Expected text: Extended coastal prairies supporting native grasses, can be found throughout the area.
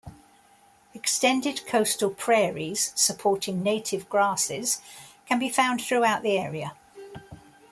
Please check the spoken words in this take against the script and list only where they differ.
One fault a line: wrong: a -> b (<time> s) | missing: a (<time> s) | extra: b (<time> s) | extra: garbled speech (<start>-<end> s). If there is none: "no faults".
no faults